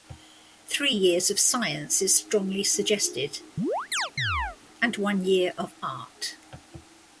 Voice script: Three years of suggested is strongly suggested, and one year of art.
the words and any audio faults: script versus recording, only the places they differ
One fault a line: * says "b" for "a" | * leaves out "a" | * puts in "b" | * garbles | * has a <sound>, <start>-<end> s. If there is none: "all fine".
* says "science" for "suggested"
* has a chirp, 3.6-4.6 s